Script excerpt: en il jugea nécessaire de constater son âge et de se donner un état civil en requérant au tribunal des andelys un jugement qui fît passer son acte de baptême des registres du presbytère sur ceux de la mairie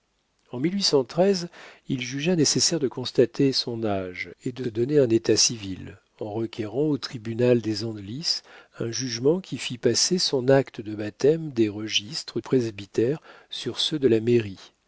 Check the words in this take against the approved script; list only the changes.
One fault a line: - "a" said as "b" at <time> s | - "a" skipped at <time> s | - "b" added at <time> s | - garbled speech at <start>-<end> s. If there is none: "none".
- "se" skipped at 4.6 s
- "du" skipped at 12.4 s